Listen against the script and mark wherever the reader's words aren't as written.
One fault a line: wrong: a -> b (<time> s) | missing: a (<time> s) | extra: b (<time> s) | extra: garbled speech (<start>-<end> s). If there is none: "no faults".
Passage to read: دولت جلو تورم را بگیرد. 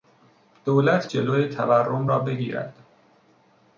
no faults